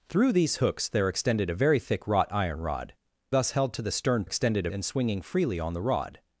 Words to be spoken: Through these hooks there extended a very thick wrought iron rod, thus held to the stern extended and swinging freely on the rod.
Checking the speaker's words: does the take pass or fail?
pass